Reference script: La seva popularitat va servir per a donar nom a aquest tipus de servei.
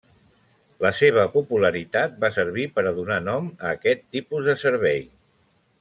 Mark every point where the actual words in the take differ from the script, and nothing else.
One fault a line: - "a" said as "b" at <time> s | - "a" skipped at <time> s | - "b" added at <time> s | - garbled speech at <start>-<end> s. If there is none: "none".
none